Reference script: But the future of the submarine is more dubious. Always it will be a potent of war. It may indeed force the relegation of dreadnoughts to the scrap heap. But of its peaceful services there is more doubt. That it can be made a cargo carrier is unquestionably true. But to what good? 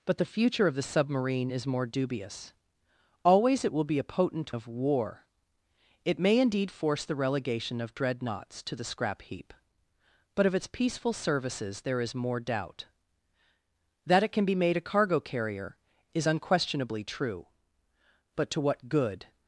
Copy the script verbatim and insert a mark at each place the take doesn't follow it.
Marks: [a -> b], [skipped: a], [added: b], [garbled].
But the future of the submarine is more dubious. Always it will be a potent of war. It may indeed force the relegation of dreadnoughts to the scrap heap. But of its peaceful services there is more doubt. That it can be made a cargo carrier is unquestionably true. But to what good?